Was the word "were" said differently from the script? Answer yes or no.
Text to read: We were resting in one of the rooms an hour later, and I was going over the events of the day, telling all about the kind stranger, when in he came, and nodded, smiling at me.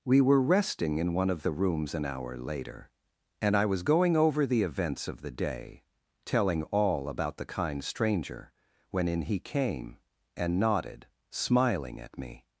no